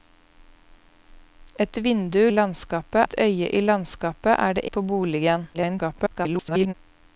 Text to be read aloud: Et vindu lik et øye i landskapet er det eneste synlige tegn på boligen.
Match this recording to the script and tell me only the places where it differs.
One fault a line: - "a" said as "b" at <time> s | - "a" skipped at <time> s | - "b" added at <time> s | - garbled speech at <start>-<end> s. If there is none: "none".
- "lik" said as "landskapet" at 2.3 s
- "eneste synlige tegn" skipped at 4.6 s
- garbled speech at 5.5-6.7 s